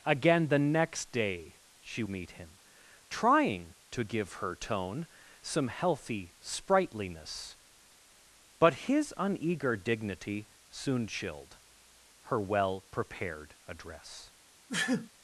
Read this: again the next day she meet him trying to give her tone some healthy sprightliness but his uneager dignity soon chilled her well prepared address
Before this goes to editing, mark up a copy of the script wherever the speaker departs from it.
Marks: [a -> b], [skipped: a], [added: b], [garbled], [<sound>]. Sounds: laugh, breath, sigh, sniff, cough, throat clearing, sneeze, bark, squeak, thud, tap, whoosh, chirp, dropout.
again the next day she meet him trying to give her tone some healthy sprightliness but his uneager dignity soon chilled her well prepared address [sneeze]